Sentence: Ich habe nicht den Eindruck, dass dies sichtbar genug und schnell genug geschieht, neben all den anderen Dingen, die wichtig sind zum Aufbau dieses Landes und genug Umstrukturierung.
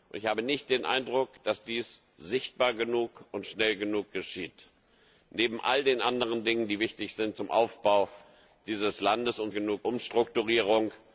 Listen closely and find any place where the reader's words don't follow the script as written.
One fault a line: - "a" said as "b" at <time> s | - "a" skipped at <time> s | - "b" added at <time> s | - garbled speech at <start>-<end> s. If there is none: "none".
none